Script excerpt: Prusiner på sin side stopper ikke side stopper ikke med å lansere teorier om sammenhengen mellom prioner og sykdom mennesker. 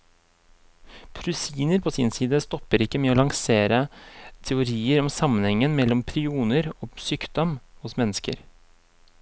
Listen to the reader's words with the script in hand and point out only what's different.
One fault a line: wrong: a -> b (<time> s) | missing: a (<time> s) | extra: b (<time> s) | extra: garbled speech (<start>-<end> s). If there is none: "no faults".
missing: side stopper ikke (3.0 s)
extra: hos (7.8 s)